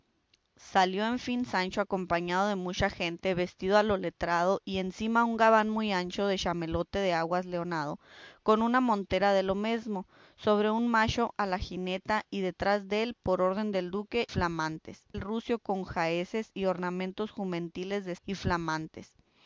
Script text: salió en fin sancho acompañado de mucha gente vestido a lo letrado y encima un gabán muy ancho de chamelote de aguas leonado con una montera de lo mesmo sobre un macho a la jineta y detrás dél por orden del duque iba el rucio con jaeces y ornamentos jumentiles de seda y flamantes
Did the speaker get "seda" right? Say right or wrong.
wrong